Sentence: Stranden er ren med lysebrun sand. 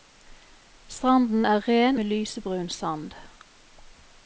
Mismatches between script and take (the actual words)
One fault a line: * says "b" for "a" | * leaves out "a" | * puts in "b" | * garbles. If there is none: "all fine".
all fine